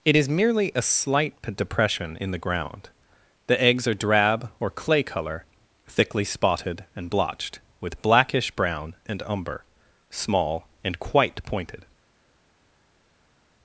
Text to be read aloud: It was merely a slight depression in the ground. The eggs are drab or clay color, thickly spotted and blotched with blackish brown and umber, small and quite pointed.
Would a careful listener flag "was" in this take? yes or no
yes